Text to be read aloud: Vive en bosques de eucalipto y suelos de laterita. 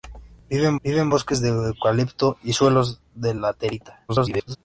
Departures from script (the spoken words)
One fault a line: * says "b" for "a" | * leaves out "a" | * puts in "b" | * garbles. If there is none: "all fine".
* puts in "vive en"
* garbles